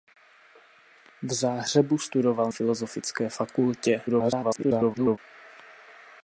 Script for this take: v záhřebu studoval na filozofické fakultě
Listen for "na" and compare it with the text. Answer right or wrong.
wrong